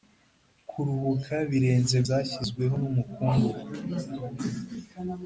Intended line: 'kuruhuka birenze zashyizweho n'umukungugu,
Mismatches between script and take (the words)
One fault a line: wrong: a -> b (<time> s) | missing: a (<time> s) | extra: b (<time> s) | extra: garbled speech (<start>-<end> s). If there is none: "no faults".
no faults